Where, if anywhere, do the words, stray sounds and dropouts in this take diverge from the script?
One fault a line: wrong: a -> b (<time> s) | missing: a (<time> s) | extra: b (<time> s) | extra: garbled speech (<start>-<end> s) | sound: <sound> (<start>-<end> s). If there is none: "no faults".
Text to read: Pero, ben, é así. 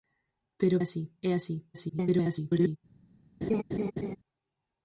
wrong: ben -> así (0.8 s)
extra: garbled speech (1.7-2.8 s)
sound: laugh (3.4-4.2 s)